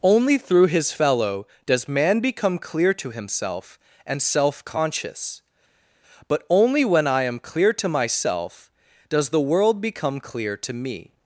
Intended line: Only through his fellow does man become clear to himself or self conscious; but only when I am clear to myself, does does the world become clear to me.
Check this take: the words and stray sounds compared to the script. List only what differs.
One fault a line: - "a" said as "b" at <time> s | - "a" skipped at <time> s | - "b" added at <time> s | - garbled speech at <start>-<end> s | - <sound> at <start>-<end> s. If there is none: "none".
- "or" said as "and" at 4.1 s
- "does" skipped at 9.3 s